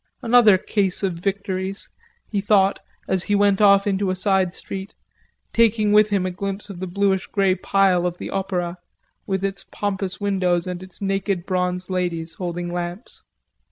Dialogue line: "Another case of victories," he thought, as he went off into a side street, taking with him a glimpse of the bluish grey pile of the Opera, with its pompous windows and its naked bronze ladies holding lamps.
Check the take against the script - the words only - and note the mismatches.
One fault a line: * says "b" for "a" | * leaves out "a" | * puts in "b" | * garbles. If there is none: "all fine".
all fine